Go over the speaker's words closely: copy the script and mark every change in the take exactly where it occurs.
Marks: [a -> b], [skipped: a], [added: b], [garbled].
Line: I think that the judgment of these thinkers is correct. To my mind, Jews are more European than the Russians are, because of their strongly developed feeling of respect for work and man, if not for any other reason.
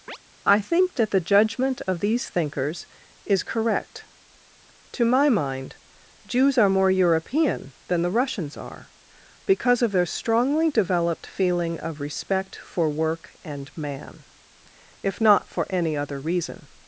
I think that the judgment of these thinkers is correct. To my mind, Jews are more European than the Russians are, because of their strongly developed feeling of respect for work and man, if not for any other reason.